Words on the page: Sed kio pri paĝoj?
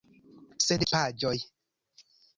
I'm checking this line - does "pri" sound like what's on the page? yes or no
no